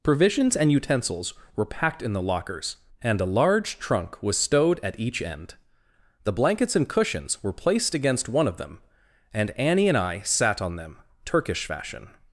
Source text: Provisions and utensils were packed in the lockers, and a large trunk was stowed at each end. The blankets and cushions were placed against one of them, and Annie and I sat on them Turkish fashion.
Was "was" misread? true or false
false